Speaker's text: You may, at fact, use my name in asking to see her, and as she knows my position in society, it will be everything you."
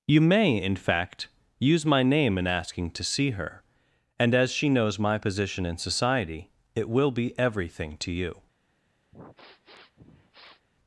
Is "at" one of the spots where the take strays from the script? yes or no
yes